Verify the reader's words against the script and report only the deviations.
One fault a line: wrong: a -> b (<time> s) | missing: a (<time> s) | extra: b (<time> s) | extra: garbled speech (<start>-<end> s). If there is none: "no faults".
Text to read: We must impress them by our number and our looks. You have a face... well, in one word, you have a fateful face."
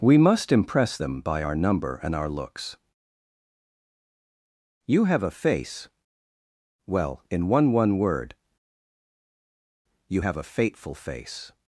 extra: one (7.7 s)